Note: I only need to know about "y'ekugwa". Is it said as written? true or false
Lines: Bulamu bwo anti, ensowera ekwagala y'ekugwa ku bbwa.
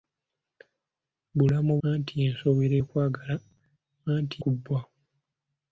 false